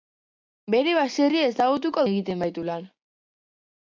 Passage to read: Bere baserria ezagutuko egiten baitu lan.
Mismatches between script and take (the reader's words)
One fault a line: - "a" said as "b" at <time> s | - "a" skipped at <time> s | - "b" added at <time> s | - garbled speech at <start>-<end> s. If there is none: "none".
none